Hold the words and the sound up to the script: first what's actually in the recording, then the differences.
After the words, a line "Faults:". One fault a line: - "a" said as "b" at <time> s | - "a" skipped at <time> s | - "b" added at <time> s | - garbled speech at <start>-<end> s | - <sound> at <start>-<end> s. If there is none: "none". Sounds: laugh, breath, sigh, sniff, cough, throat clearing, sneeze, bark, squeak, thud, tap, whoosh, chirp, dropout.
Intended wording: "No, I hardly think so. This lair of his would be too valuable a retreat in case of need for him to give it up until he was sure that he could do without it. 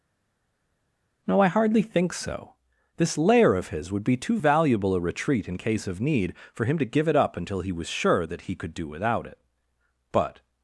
"No, I hardly think so. This lair of his would be too valuable a retreat in case of need for him to give it up until he was sure that he could do without it. But
Faults:
- "But" added at 10.1 s